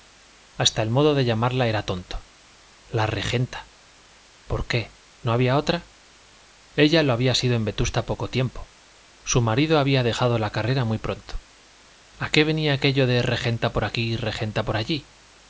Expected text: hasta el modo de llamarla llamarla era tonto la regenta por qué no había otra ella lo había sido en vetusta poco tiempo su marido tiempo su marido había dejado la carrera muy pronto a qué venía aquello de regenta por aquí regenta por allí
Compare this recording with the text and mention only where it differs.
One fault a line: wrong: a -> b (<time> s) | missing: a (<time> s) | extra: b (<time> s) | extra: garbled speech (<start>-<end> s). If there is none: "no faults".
missing: llamarla (1.7 s)
missing: tiempo su marido (9.8 s)